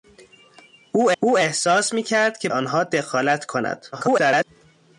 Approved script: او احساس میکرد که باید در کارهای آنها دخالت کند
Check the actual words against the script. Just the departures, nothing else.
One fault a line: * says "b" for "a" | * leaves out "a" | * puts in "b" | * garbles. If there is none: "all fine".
* puts in "او"
* leaves out "باید در کارهای"
* garbles